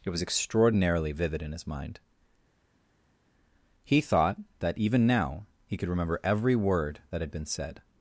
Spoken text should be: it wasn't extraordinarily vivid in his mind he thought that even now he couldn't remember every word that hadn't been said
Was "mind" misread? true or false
false